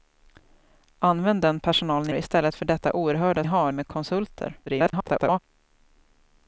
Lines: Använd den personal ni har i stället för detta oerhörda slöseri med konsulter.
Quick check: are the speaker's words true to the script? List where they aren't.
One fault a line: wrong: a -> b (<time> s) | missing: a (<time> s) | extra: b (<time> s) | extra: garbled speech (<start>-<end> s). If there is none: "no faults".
missing: har (2.1 s)
wrong: slöseri -> har (3.4 s)
extra: garbled speech (4.7-5.4 s)